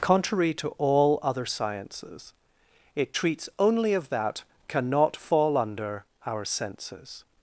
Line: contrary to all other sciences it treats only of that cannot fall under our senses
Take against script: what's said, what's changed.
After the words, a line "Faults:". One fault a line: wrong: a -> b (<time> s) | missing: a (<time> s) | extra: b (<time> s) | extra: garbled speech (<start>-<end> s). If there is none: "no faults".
contrary to all other sciences it treats only of that cannot fall under our senses
Faults:
no faults